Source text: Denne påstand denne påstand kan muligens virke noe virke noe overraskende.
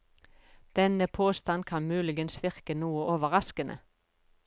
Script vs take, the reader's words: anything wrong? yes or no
yes